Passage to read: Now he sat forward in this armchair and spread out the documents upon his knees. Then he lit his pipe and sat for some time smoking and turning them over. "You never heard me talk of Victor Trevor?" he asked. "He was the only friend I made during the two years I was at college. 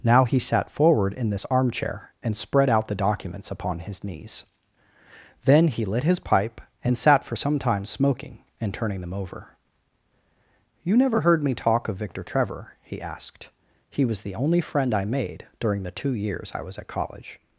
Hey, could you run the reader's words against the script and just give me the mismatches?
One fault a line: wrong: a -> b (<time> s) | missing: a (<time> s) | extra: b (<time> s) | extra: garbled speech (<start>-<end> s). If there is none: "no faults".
no faults